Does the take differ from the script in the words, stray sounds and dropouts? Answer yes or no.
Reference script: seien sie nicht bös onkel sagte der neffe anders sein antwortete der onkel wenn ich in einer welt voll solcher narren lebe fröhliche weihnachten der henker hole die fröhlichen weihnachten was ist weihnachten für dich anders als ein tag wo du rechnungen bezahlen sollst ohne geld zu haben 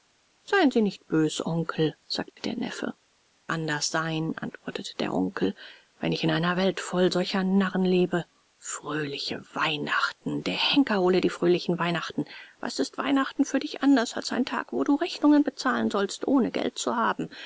yes